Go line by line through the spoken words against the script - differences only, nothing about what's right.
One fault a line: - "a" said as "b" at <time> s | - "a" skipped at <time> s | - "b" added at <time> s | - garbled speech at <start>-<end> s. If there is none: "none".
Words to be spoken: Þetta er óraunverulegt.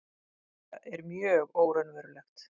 - "mjög" added at 1.1 s